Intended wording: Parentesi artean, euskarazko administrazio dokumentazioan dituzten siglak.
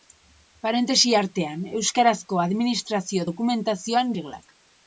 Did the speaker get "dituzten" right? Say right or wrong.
wrong